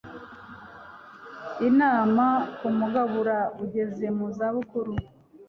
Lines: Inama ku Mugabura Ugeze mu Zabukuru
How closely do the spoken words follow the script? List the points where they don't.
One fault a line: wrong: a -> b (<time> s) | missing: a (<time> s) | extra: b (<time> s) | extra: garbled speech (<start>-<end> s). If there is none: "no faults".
no faults